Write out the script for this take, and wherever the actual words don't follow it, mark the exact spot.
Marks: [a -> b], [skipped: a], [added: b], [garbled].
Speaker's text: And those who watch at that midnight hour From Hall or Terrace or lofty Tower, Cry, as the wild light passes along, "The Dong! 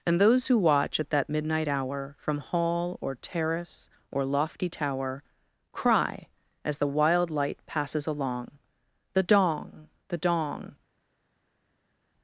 And those who watch at that midnight hour From Hall or Terrace or lofty Tower, Cry, as the wild light passes along, "The Dong! [added: the Dong]